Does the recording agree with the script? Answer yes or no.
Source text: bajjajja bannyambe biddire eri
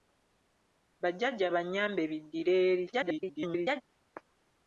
no